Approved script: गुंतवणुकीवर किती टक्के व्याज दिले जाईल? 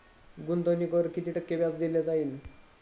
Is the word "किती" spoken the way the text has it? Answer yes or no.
yes